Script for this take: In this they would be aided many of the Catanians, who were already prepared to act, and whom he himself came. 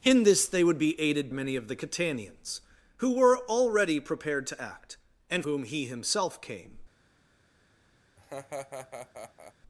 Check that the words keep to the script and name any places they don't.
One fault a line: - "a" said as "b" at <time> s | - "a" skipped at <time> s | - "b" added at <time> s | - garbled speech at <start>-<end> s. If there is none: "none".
none